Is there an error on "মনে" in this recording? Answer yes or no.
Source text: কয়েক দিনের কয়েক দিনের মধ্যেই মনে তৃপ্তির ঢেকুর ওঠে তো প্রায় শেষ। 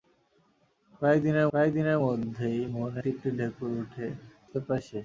no